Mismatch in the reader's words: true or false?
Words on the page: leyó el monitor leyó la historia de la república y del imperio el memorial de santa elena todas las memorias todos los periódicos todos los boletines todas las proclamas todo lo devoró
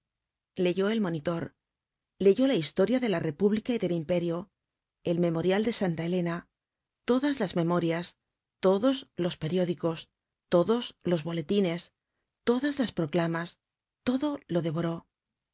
false